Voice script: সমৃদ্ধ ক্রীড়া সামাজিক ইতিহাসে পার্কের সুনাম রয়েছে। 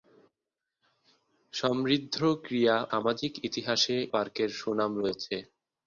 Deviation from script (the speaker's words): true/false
false